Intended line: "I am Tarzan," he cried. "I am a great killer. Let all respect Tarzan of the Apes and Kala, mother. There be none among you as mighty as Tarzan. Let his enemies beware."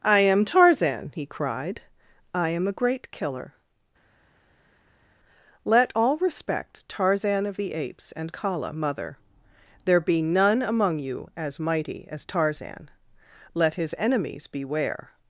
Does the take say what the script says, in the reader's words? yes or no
yes